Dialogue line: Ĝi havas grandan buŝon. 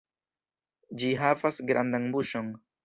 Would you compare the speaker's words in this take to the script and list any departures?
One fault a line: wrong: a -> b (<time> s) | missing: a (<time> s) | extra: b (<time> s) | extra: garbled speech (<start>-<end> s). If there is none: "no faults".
no faults